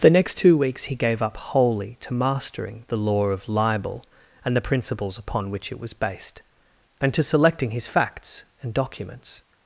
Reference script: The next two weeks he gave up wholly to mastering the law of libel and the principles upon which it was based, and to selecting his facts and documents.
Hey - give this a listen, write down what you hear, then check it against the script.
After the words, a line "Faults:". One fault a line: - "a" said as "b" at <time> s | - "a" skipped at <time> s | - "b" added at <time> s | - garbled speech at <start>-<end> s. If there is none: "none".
The next two weeks he gave up wholly to mastering the law of libel and the principles upon which it was based, and to selecting his facts and documents.
Faults:
none